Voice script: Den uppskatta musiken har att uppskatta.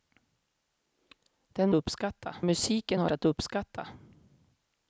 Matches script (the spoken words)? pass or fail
pass